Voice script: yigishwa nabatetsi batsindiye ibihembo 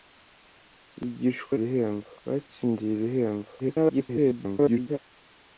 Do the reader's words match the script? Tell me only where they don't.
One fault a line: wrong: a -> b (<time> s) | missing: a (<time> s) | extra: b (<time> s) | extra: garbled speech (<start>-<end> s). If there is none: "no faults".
wrong: nabatetsi -> ibihembo (1.5 s)
extra: garbled speech (3.6-5.0 s)